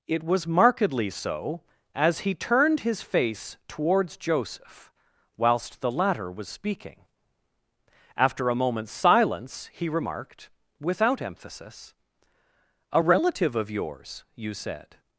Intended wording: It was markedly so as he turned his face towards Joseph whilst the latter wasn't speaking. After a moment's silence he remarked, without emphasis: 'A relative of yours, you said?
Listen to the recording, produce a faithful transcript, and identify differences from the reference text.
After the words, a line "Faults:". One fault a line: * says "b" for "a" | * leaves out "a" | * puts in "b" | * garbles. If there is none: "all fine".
It was markedly so as he turned his face towards Joseph whilst the latter was speaking. After a moment's silence he remarked, without emphasis: 'A relative of yours, you said?
Faults:
* says "was" for "wasn't"